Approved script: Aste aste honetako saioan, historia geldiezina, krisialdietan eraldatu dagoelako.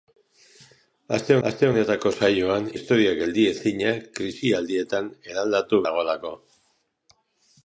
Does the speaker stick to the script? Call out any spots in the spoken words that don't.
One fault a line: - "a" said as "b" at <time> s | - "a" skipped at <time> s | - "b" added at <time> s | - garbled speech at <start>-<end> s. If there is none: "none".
none